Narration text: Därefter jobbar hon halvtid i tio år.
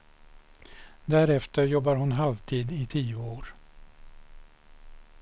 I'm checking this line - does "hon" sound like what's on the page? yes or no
yes